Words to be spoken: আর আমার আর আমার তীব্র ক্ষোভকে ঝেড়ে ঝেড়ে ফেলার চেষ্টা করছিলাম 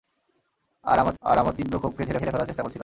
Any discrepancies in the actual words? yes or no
no